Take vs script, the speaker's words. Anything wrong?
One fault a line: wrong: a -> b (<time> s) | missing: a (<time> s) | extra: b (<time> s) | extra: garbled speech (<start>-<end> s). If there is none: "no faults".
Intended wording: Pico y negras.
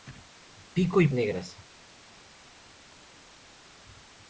no faults